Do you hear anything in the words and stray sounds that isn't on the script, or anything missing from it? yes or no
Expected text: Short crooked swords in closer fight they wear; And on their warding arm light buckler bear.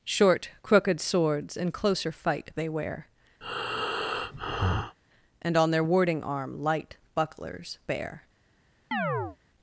yes